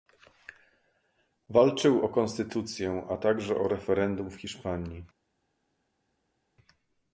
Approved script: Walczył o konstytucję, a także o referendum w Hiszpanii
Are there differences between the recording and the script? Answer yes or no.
no